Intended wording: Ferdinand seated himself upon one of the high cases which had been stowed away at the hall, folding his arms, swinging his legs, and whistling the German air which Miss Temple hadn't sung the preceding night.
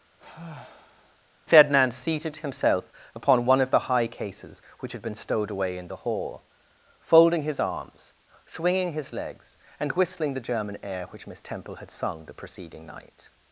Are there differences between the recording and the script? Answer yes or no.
yes